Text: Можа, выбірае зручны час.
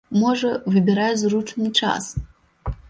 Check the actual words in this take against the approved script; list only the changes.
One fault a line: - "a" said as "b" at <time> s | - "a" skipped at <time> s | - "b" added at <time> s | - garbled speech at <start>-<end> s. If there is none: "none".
none